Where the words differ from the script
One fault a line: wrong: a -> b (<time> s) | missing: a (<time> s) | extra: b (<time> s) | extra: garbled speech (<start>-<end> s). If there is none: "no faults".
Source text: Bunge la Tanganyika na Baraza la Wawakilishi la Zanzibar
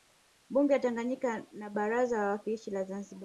no faults